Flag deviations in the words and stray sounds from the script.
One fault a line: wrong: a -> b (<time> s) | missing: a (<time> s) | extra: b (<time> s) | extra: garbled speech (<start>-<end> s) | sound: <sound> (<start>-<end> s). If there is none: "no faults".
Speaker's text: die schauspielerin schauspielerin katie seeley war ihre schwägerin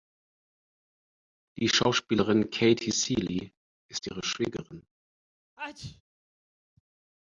missing: schauspielerin (2.5 s)
wrong: war -> ist (3.9 s)
sound: sneeze (5.6-6.0 s)